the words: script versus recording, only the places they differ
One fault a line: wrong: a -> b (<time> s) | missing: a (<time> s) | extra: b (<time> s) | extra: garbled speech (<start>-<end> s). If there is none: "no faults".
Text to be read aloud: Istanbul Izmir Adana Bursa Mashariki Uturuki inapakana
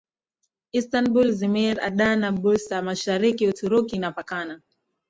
no faults